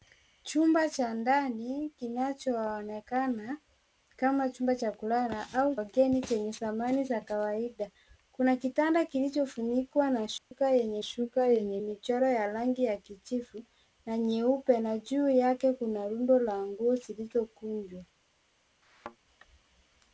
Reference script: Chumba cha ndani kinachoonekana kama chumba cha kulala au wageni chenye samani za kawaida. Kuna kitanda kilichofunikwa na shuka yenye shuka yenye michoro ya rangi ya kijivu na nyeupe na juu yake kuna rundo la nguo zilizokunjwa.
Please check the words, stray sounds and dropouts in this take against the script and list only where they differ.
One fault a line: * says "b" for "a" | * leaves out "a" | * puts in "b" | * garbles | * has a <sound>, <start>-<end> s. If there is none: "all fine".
* has a dropout, 10.4-10.5 s
* has a thud, 18.8-19.2 s